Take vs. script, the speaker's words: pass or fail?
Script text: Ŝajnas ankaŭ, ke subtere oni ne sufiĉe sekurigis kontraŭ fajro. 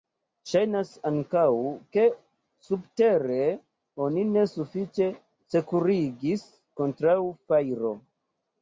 pass